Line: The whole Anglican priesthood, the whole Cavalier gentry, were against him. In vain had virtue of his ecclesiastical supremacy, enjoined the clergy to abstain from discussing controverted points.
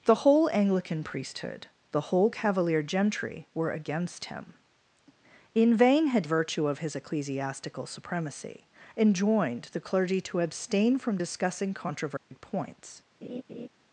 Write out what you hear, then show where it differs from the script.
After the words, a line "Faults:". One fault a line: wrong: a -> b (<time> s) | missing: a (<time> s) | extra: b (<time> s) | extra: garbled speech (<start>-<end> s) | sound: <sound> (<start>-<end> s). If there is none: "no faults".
The whole Anglican priesthood, the whole Cavalier gentry, were against him. In vain had virtue of his ecclesiastical supremacy, enjoined the clergy to abstain from discussing controverted points.
Faults:
sound: dropout (12.2-12.3 s)
sound: laugh (13.2-13.7 s)